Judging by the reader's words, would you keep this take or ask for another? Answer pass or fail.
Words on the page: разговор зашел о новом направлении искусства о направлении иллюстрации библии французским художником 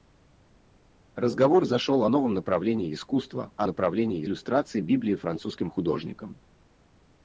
pass